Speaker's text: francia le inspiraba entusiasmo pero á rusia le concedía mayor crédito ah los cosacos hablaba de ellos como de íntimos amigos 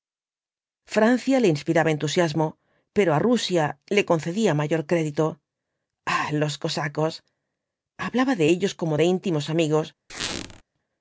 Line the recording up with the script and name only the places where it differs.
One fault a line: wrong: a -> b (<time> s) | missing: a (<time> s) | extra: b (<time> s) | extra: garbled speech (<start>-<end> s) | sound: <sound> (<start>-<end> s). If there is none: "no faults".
sound: squeak (10.1-10.6 s)